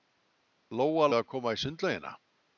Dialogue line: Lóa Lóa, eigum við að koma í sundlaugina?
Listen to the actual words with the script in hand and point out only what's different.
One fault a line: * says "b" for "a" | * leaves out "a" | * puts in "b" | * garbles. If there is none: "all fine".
* leaves out "Lóa eigum"